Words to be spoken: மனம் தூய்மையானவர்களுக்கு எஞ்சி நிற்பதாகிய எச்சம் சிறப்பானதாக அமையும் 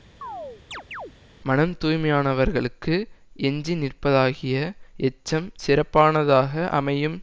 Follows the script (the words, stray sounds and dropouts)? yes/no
no